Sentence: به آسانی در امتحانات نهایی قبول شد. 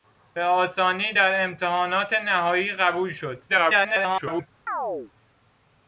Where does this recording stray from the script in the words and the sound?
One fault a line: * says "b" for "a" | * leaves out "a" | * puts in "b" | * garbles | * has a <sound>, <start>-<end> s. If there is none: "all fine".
* garbles
* has a chirp, 4.7-5.1 s